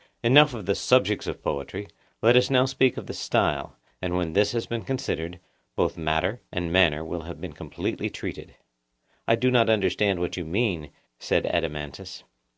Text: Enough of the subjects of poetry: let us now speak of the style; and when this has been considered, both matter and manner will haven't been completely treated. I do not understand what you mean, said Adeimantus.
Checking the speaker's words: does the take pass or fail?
fail